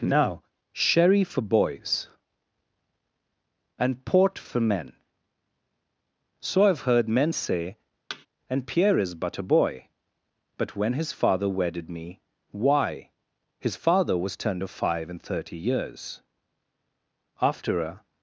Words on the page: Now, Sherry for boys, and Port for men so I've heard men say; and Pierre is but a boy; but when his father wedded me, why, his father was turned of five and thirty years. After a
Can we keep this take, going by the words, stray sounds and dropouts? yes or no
no